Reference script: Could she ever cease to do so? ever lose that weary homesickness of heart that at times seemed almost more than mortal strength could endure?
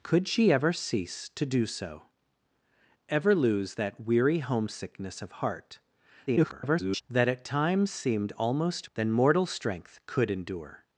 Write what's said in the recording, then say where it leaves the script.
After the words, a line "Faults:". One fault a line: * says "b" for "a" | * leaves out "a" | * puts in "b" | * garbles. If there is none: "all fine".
Could she ever cease to do so? ever lose that weary homesickness of heart [garbled] that at times seemed almost than mortal strength could endure?
Faults:
* garbles
* leaves out "more"